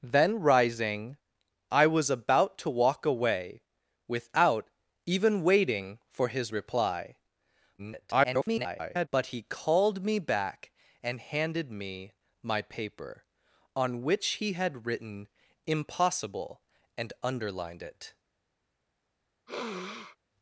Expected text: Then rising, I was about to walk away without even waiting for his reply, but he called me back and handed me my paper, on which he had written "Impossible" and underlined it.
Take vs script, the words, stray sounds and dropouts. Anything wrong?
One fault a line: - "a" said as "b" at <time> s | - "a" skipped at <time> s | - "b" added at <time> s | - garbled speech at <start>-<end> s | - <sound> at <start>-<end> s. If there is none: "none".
- garbled speech at 7.8-9.1 s
- sniff at 19.5-20.2 s